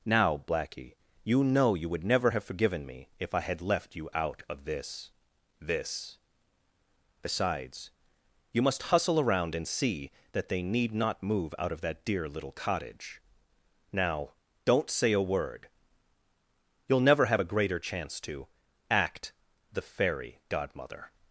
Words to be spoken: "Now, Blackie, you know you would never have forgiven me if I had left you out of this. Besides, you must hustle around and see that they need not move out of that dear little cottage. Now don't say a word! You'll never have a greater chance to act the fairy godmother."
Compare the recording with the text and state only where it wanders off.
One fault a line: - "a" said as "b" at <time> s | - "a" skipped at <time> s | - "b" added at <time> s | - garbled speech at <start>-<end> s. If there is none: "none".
- "this" added at 5.6 s